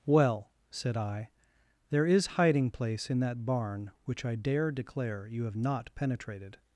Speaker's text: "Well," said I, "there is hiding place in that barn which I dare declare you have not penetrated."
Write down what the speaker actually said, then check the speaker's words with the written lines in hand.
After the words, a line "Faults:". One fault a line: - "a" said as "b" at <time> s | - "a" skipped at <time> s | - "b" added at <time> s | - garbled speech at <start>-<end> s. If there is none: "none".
"Well," said I, "there is hiding place in that barn which I dare declare you have not penetrated."
Faults:
none